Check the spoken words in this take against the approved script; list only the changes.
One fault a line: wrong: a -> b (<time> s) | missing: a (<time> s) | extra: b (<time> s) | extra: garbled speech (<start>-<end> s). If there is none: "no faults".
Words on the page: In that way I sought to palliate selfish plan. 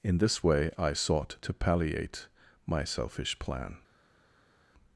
wrong: that -> this (0.2 s)
extra: my (2.6 s)